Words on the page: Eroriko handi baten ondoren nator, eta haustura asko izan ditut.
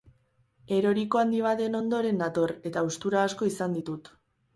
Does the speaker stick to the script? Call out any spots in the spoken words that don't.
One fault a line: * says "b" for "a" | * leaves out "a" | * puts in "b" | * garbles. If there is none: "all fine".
all fine